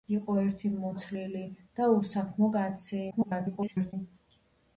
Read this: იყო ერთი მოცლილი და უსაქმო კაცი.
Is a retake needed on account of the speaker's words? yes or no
yes